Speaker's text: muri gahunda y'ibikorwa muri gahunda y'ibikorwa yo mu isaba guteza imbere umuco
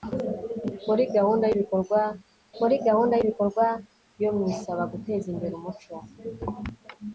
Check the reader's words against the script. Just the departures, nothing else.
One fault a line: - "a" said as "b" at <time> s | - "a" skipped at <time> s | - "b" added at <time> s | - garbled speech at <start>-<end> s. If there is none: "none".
none